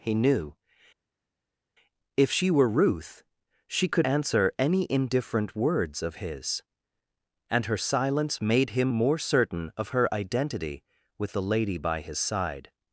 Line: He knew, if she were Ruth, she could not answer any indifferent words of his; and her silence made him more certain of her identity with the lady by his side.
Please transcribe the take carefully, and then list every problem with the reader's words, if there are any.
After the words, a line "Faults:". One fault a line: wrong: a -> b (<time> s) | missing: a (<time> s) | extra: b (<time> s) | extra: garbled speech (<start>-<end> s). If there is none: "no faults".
He knew, if she were Ruth, she could answer any indifferent words of his; and her silence made him more certain of her identity with the lady by his side.
Faults:
missing: not (4.1 s)